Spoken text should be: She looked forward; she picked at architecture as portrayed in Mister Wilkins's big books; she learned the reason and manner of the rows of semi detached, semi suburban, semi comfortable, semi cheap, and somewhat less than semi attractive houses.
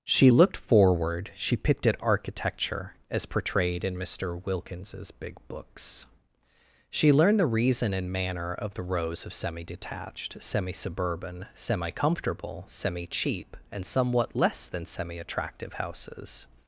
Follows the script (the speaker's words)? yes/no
yes